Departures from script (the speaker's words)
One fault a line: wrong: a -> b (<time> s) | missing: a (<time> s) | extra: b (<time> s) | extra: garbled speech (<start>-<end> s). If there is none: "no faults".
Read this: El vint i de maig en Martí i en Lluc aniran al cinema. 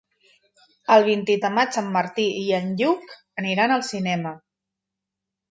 no faults